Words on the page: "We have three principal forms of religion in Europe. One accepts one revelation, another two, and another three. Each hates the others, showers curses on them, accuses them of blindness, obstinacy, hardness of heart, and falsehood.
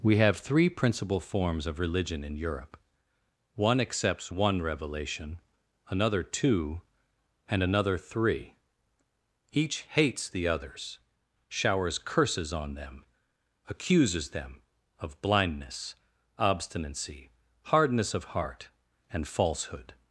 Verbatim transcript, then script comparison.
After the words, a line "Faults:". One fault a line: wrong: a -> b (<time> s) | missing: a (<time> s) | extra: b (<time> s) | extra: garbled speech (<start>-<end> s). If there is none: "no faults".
"We have three principal forms of religion in Europe. One accepts one revelation, another two, and another three. Each hates the others, showers curses on them, accuses them of blindness, obstinacy, hardness of heart, and falsehood.
Faults:
no faults